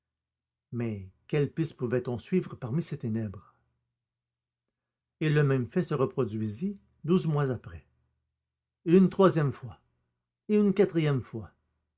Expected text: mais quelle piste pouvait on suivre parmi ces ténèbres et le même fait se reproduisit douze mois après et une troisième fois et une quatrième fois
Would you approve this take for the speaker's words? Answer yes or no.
yes